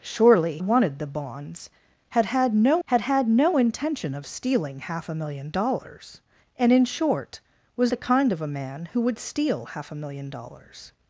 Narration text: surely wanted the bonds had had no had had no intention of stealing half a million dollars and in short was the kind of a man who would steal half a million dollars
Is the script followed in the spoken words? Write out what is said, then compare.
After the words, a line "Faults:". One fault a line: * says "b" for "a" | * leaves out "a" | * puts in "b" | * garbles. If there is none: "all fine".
surely wanted the bonds had had no had had no intention of stealing half a million dollars and in short was the kind of a man who would steal half a million dollars
Faults:
all fine